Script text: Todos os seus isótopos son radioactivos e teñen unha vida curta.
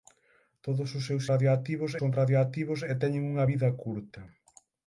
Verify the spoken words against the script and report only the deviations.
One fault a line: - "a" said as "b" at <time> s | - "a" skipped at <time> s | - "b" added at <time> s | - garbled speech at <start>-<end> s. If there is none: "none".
- "isótopos" said as "radioactivos" at 1.3 s